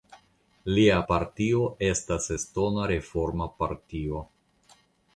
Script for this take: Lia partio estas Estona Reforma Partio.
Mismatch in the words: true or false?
false